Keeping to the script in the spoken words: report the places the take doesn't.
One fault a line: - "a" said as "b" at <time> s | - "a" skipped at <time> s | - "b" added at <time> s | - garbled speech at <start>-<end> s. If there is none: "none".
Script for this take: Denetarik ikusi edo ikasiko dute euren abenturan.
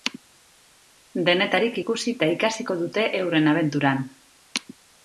- "edo" said as "eta" at 2.1 s